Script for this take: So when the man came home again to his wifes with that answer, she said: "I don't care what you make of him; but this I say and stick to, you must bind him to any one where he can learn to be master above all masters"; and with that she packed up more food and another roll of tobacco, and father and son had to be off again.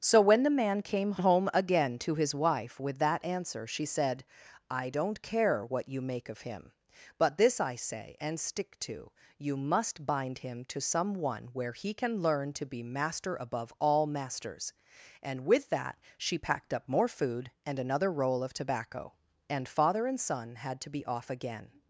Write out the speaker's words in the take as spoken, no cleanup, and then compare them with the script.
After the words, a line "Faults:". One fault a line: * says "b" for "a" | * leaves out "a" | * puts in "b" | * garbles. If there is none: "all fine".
So when the man came home again to his wife with that answer, she said: "I don't care what you make of him; but this I say and stick to, you must bind him to some one where he can learn to be master above all masters"; and with that she packed up more food and another roll of tobacco, and father and son had to be off again.
Faults:
* says "wife" for "wifes"
* says "some" for "any"